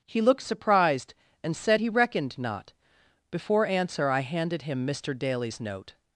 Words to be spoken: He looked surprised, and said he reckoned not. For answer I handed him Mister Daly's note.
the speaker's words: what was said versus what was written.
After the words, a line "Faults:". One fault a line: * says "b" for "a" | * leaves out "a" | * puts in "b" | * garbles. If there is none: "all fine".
He looked surprised, and said he reckoned not. Before answer I handed him Mister Daly's note.
Faults:
* says "Before" for "For"